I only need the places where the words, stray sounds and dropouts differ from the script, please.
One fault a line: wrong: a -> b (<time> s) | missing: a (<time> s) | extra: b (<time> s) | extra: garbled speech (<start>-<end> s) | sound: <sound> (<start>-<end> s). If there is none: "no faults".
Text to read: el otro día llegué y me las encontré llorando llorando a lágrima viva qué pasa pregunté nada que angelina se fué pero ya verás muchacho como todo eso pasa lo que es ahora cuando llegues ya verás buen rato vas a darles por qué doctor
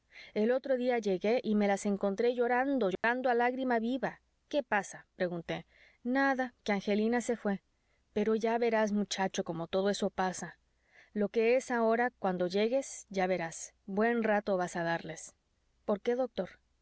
sound: dropout (3.0-3.0 s)